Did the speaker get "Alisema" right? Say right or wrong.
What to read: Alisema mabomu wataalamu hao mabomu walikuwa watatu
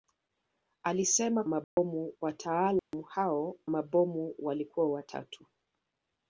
right